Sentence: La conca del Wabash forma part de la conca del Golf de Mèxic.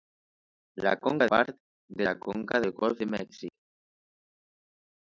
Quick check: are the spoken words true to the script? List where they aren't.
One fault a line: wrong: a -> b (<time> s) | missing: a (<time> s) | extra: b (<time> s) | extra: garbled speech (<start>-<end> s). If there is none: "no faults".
missing: del Wabash forma (1.3 s)